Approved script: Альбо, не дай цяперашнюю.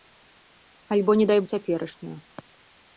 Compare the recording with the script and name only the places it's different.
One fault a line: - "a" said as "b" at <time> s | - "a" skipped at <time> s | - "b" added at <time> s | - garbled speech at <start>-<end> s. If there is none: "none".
none